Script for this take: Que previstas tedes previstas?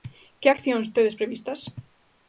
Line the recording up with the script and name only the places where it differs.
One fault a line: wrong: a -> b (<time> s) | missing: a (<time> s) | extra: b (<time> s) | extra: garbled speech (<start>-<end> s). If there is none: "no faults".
wrong: previstas -> accións (0.5 s)